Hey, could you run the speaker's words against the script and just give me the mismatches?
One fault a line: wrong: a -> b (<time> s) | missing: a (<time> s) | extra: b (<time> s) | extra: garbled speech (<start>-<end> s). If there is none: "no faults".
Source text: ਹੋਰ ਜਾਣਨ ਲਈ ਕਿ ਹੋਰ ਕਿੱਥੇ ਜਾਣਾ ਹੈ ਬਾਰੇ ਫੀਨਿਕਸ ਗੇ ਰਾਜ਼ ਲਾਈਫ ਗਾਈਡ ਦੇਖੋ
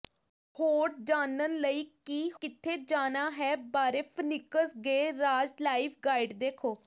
missing: ਹੋਰ (2.3 s)